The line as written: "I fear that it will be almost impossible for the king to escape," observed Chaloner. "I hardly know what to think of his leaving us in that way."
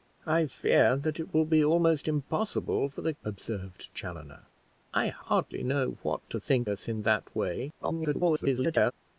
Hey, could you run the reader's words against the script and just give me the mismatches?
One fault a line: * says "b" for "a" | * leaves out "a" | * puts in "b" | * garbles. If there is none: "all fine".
* leaves out "king to escape"
* leaves out "of his leaving"
* garbles